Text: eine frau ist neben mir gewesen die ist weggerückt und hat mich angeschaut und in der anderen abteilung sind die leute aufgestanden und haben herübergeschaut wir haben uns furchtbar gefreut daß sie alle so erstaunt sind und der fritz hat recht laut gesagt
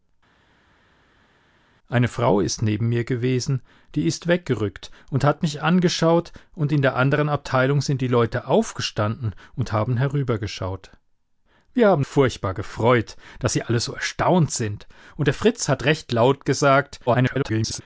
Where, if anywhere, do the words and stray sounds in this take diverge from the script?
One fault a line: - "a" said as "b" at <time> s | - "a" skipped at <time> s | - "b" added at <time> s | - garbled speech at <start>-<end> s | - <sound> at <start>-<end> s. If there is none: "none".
- "uns" skipped at 12.1 s
- garbled speech at 17.1-17.8 s